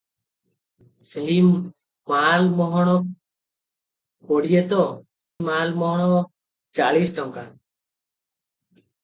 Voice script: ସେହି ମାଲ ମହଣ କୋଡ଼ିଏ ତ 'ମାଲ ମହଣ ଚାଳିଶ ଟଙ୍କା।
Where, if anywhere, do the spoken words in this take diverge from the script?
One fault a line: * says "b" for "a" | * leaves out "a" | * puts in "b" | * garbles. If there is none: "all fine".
all fine